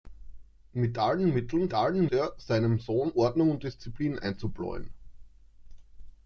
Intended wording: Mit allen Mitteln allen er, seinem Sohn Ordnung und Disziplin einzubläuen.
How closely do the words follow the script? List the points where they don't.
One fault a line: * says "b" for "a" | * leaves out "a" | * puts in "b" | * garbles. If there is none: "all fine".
all fine